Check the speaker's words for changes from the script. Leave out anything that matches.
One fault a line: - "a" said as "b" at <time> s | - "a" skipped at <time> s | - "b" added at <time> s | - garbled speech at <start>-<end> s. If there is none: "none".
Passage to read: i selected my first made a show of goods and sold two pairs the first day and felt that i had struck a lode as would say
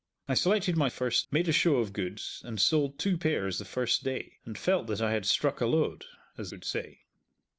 none